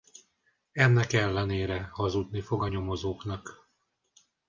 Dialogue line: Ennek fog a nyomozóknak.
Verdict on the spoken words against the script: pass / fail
fail